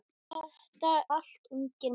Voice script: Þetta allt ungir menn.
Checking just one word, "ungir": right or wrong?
right